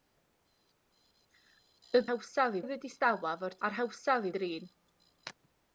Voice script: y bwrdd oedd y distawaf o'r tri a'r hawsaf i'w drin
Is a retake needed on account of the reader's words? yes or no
yes